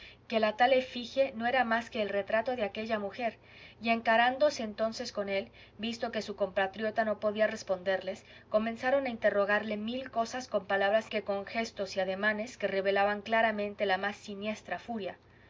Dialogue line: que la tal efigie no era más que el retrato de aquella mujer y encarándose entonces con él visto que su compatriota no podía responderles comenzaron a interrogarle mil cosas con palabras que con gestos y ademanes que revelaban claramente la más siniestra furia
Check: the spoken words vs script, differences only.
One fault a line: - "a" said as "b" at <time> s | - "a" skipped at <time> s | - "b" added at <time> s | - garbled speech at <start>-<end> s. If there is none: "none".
none